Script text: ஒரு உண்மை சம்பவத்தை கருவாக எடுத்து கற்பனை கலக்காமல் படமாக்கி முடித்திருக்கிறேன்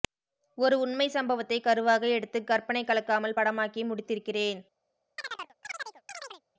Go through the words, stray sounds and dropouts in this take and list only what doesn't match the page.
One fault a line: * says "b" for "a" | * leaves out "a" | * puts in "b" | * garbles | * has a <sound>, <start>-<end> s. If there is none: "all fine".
* has a chirp, 5.2-6.4 s